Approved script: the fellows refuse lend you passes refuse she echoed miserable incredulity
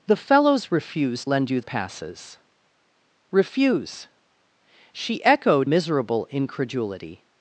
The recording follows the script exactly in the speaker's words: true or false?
true